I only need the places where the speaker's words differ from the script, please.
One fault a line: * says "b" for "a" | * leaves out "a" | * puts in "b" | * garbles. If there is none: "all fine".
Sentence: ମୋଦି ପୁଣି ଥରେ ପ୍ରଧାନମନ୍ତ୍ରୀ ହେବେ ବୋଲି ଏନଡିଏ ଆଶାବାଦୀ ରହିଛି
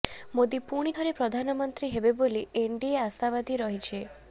all fine